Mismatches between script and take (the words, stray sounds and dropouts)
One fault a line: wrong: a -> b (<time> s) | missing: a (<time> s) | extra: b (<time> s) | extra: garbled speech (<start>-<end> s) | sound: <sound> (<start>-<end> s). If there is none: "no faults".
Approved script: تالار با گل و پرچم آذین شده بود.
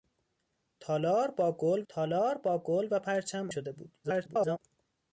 extra: تالار با گل (1.9 s)
missing: آذین (3.5 s)
extra: garbled speech (4.0-4.6 s)